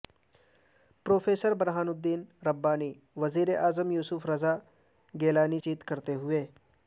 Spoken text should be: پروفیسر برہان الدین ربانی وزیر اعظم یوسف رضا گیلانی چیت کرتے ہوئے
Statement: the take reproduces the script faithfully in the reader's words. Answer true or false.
true